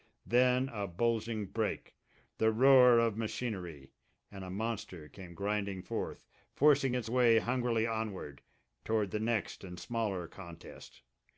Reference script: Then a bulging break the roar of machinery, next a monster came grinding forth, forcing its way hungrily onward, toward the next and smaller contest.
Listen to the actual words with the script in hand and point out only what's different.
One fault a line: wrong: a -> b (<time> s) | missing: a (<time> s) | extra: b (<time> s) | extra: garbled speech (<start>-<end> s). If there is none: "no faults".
wrong: next -> and (4.3 s)